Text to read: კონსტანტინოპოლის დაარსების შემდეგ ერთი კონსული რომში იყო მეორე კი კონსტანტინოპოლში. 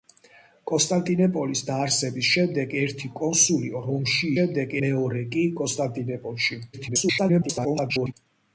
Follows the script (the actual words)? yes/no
no